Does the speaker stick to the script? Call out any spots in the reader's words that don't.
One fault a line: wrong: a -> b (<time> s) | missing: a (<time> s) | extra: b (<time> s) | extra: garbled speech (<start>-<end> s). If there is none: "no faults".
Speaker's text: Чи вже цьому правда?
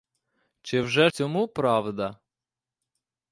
no faults